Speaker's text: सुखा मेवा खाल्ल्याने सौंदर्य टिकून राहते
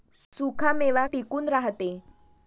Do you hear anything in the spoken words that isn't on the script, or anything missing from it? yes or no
yes